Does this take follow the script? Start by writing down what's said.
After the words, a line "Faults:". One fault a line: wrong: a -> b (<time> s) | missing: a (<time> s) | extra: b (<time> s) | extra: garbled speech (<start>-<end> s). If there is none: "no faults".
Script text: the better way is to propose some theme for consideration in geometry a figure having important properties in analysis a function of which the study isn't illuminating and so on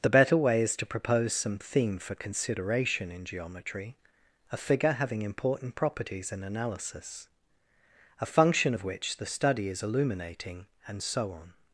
the better way is to propose some theme for consideration in geometry a figure having important properties in analysis a function of which the study is illuminating and so on
Faults:
wrong: isn't -> is (9.7 s)